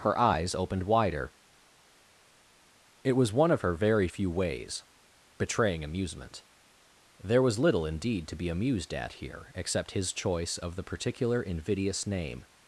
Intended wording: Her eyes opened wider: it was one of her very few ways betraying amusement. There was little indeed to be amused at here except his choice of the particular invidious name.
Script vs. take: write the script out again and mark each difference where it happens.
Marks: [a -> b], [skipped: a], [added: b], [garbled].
Her eyes opened wider: it was one of her very few ways betraying amusement. There was little indeed to be amused at here except his choice of the particular invidious name.